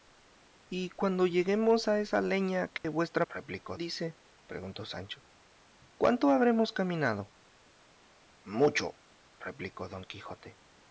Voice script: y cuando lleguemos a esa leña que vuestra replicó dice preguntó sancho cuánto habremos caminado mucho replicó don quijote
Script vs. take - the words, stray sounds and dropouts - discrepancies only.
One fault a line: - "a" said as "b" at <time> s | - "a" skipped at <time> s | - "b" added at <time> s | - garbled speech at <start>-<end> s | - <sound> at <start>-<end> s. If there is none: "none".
- dropout at 2.8-2.8 s